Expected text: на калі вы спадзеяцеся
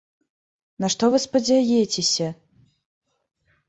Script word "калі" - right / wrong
wrong